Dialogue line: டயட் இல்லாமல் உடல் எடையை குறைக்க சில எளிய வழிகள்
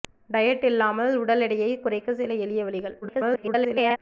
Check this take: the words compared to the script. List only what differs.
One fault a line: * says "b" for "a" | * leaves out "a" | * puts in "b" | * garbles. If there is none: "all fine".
* garbles